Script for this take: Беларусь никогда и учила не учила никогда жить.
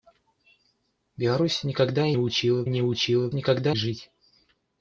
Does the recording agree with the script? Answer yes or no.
yes